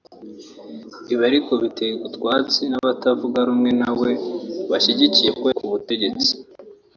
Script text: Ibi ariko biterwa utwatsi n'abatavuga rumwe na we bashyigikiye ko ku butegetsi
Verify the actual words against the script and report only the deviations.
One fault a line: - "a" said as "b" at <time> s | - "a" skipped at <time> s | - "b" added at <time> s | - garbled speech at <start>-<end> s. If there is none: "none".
none